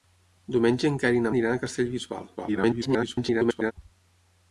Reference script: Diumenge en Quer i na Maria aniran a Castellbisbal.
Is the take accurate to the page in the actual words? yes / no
no